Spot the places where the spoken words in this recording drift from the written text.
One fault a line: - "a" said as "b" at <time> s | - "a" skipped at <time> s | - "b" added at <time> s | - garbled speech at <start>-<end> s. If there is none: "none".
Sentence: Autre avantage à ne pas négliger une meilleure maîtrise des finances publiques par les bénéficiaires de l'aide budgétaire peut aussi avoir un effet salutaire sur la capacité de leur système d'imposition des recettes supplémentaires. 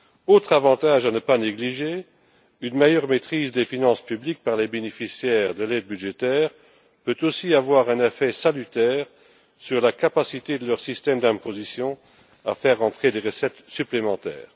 - "à faire entrer" added at 12.4 s